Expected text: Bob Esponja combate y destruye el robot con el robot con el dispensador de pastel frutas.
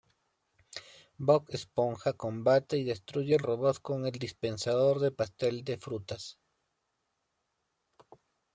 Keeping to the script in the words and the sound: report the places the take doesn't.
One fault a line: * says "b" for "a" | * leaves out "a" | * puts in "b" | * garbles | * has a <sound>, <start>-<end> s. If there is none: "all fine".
* leaves out "robot con el"
* puts in "de"